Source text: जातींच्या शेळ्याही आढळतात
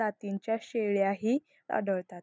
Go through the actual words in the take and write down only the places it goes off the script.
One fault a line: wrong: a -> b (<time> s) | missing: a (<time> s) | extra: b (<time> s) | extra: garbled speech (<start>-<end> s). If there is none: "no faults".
no faults